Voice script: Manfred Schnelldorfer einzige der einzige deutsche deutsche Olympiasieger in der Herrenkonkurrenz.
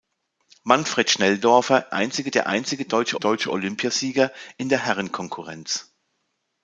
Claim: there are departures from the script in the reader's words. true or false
false